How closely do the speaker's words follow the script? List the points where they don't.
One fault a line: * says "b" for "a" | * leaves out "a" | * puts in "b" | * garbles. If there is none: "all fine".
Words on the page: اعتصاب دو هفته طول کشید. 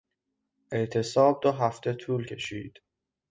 all fine